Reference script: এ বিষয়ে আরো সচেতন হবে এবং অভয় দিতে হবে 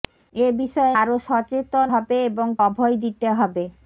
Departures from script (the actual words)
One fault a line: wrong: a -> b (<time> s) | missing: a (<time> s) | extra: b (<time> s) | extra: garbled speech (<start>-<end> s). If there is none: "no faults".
no faults